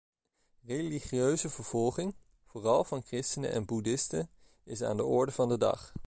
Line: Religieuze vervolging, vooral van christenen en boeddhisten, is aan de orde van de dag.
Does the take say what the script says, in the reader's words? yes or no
yes